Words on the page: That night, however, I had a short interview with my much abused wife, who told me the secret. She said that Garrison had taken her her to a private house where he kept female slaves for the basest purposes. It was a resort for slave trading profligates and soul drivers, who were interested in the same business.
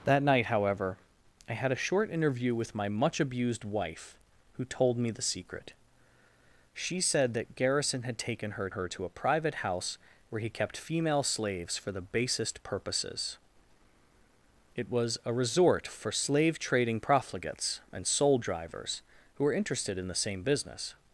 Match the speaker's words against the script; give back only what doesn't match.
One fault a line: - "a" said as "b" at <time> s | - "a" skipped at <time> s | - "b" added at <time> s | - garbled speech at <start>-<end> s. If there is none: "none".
none